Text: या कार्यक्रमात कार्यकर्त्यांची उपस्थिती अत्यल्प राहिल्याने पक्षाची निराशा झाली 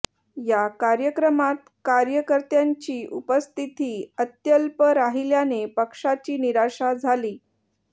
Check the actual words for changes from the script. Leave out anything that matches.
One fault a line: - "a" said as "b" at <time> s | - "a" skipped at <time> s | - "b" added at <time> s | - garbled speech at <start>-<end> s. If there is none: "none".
none